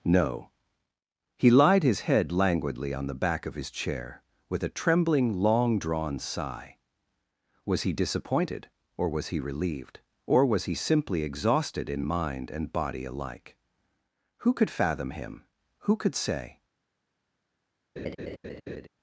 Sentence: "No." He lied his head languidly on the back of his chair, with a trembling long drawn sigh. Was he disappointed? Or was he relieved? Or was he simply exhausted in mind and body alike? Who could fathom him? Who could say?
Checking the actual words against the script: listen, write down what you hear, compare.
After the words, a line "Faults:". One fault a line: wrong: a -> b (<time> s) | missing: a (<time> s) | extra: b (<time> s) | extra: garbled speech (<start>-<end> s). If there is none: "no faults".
"No." He lied his head languidly on the back of his chair, with a trembling long drawn sigh. Was he disappointed? Or was he relieved? Or was he simply exhausted in mind and body alike? Who could fathom him? Who could say?
Faults:
no faults